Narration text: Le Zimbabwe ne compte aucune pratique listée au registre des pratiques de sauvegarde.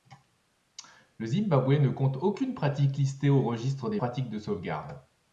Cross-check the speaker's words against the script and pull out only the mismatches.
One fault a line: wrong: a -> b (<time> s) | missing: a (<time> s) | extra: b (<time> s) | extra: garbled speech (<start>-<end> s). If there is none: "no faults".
no faults